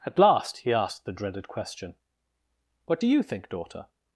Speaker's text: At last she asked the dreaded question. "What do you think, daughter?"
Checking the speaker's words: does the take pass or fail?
fail